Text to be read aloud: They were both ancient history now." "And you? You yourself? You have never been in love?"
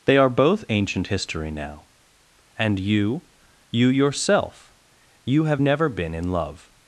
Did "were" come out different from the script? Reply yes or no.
yes